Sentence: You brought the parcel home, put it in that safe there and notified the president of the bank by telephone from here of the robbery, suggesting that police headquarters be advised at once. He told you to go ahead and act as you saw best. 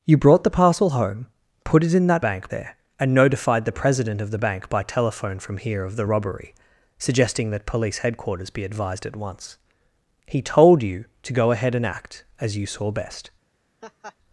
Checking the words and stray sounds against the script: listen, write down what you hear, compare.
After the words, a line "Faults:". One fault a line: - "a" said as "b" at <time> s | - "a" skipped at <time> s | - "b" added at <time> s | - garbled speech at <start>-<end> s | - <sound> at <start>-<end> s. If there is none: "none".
You brought the parcel home, put it in that bank there and notified the president of the bank by telephone from here of the robbery, suggesting that police headquarters be advised at once. He told you to go ahead and act as you saw best.
Faults:
- "safe" said as "bank" at 2.2 s
- laugh at 13.8-14.2 s